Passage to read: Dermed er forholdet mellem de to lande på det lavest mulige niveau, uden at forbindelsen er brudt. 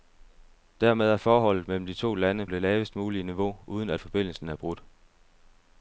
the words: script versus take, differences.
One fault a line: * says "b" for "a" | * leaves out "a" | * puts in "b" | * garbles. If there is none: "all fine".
* leaves out "på"